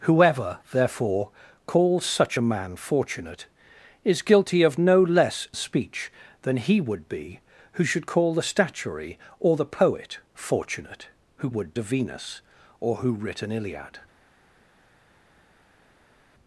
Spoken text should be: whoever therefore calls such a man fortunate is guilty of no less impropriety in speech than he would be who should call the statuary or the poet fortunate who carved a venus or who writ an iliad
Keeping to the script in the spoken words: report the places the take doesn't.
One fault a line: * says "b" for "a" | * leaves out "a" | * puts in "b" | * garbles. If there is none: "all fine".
* leaves out "impropriety in"
* says "would" for "carved"